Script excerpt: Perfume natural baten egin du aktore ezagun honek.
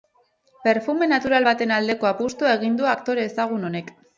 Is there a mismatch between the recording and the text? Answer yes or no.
yes